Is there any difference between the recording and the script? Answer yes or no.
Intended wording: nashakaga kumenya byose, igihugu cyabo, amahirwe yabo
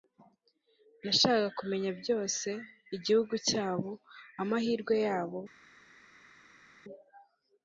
no